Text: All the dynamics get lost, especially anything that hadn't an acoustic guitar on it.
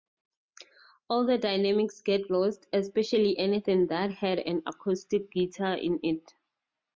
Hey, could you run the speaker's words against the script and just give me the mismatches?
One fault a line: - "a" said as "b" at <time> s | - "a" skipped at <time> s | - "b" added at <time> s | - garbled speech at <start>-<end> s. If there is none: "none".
- "hadn't" said as "had" at 4.1 s
- "on" said as "in" at 5.8 s